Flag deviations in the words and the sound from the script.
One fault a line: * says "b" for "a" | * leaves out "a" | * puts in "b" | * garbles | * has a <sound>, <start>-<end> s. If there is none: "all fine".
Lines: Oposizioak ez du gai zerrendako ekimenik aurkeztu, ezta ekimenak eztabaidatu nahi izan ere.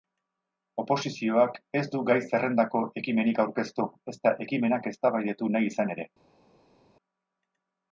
all fine